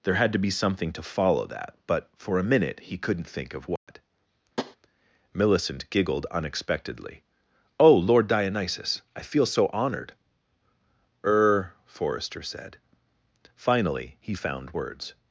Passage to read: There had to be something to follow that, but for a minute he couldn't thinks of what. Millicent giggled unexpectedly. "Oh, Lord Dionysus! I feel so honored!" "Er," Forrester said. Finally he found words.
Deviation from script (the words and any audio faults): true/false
true